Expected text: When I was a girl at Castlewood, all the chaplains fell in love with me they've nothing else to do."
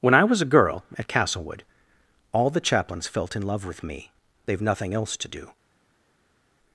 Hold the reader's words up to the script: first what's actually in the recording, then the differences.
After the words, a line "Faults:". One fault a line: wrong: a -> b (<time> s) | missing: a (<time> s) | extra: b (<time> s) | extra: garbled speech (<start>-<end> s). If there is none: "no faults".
When I was a girl at Castlewood, all the chaplains felt in love with me they've nothing else to do."
Faults:
wrong: fell -> felt (3.1 s)